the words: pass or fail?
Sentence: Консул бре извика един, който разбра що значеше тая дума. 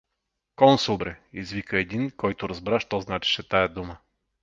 pass